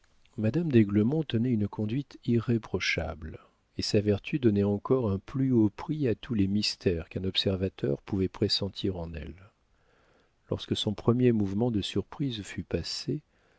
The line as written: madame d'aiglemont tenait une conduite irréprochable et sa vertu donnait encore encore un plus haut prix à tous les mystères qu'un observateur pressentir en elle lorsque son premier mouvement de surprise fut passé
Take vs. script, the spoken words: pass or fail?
fail